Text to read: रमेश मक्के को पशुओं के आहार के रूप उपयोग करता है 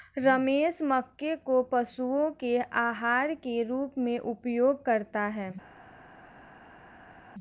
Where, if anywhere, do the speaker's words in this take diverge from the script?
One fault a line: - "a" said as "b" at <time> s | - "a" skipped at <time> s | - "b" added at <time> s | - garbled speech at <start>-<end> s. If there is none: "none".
- "में" added at 4.0 s